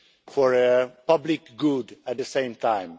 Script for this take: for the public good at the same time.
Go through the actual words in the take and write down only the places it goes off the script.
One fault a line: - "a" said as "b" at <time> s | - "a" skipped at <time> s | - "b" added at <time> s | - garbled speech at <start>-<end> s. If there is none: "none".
none